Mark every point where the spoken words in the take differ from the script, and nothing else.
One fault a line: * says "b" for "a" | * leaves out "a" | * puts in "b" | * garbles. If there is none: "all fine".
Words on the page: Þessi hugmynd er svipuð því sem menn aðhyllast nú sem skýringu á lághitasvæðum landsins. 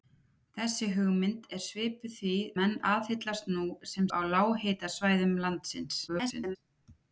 * leaves out "sem"
* leaves out "skýringu"
* garbles